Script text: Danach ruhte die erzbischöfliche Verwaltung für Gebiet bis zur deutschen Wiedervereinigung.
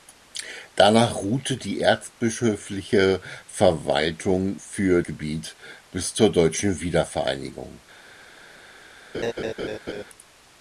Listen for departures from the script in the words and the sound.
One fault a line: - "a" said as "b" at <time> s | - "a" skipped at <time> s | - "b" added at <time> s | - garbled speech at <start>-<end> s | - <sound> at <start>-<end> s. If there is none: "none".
- laugh at 9.1-10.0 s